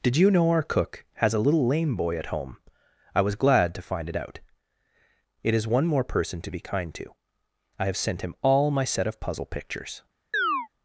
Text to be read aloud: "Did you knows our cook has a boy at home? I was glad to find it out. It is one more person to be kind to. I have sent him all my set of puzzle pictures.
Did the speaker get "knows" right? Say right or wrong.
wrong